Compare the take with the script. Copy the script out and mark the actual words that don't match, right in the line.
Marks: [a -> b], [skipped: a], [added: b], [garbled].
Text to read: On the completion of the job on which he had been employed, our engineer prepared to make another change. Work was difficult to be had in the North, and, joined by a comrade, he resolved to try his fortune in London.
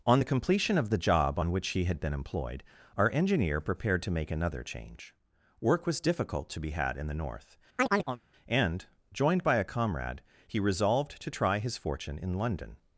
On the completion of the job on which he had been employed, our engineer prepared to make another change. Work was difficult to be had in the North, and, joined by a comrade, he resolved to try his fortune in London.